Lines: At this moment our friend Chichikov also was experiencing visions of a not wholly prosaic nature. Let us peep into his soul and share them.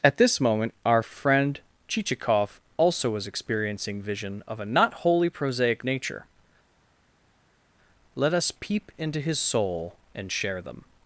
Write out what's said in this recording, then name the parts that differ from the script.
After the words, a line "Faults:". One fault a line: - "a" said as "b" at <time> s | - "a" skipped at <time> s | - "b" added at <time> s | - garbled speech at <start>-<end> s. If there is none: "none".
At this moment our friend Chichikov also was experiencing vision of a not wholly prosaic nature. Let us peep into his soul and share them.
Faults:
- "visions" said as "vision" at 4.0 s